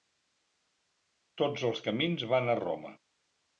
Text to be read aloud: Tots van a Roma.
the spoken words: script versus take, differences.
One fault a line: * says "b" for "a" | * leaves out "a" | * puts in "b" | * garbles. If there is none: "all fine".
* puts in "els camins"